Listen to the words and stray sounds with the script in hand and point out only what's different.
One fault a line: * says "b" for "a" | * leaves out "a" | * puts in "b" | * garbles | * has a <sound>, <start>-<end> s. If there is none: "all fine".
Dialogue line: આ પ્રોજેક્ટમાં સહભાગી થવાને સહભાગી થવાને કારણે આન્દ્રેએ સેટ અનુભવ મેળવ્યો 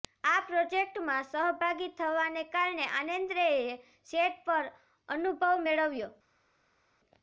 * leaves out "સહભાગી થવાને"
* puts in "પર"